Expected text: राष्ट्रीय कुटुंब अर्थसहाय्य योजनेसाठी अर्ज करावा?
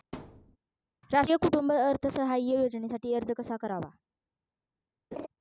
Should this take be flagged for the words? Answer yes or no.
yes